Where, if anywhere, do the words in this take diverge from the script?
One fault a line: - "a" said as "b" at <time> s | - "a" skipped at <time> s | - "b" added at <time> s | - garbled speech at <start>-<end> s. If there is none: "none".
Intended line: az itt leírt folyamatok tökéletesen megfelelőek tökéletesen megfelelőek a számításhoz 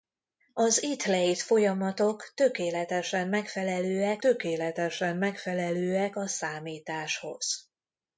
none